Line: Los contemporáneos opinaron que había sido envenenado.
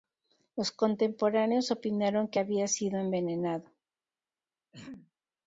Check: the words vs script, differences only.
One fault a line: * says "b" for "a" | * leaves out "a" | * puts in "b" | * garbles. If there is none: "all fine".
all fine